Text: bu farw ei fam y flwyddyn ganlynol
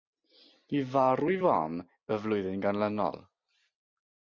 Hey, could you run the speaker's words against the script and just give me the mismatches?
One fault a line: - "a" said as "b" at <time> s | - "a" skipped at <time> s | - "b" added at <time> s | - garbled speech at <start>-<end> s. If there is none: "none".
none